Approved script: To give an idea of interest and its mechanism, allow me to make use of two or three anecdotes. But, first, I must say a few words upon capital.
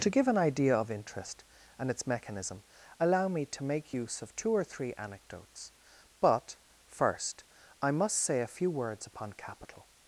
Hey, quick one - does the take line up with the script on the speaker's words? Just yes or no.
yes